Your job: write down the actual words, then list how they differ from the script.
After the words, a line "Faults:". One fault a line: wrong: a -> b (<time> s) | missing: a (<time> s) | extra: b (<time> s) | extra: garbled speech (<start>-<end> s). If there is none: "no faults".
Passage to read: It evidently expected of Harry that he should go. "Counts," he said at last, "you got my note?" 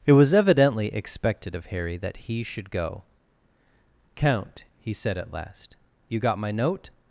It was evidently expected of Harry that he should go. "Count," he said at last, "you got my note?"
Faults:
extra: was (0.1 s)
wrong: Counts -> Count (4.2 s)